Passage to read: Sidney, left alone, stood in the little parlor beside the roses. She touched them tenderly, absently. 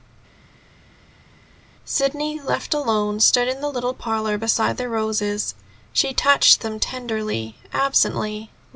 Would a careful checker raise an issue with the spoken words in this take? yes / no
no